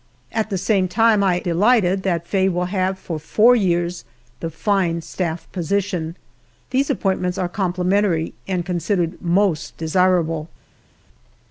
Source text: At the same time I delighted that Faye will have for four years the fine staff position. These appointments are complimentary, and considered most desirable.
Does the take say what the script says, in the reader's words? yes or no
yes